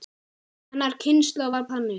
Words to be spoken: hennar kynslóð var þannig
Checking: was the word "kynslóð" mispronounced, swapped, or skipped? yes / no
no